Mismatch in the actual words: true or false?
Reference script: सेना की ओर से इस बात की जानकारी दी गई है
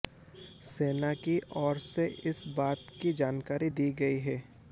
false